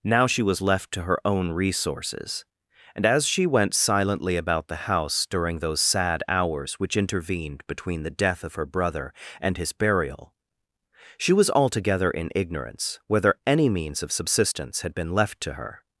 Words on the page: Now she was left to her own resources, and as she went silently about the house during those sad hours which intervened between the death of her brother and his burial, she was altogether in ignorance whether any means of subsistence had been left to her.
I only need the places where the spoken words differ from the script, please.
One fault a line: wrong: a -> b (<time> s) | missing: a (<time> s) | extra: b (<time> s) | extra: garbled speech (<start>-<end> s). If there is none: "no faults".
no faults